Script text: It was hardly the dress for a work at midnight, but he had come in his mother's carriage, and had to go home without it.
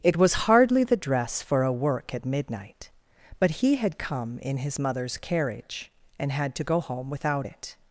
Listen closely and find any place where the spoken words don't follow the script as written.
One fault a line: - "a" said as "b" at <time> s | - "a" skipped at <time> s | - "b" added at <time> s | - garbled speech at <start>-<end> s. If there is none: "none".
none